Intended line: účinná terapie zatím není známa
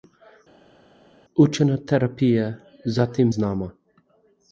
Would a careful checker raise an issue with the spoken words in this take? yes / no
yes